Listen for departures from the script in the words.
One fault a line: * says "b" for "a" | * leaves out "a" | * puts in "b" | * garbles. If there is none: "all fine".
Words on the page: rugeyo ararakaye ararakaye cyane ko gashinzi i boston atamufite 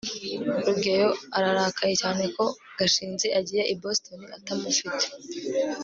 * leaves out "ararakaye"
* puts in "agiye"